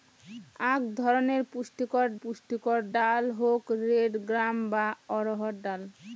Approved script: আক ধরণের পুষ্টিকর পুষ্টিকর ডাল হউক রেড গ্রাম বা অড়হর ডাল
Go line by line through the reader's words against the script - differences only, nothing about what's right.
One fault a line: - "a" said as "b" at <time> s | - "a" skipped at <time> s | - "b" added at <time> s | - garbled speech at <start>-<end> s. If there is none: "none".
none